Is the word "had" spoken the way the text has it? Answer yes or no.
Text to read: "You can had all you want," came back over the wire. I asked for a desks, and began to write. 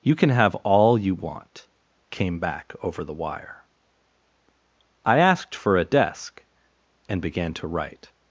no